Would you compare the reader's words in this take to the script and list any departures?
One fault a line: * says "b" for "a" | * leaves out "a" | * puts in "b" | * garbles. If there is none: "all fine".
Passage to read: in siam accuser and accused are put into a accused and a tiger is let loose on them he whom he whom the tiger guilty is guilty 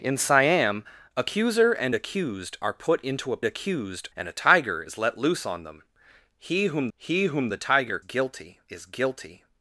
all fine